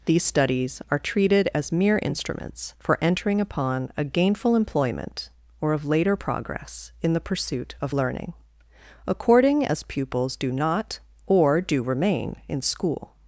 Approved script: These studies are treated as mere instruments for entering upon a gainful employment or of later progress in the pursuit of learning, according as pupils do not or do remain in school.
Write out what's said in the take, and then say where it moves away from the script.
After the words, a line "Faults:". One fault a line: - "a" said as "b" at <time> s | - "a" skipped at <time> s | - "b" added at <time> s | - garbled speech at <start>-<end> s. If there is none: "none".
These studies are treated as mere instruments for entering upon a gainful employment or of later progress in the pursuit of learning, according as pupils do not or do remain in school.
Faults:
none